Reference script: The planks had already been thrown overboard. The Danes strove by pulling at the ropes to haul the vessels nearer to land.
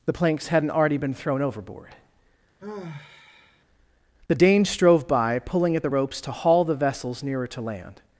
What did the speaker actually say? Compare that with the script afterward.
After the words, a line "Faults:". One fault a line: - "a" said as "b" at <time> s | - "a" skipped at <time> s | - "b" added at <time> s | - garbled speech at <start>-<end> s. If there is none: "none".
The planks hadn't already been thrown overboard. The Danes strove by pulling at the ropes to haul the vessels nearer to land.
Faults:
- "had" said as "hadn't" at 0.5 s